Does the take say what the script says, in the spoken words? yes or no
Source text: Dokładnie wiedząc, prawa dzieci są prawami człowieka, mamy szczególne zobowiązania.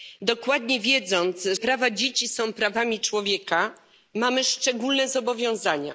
yes